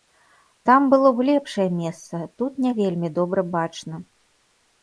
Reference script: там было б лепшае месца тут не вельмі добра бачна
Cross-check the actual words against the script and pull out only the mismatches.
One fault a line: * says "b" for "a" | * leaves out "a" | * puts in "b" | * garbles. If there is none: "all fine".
all fine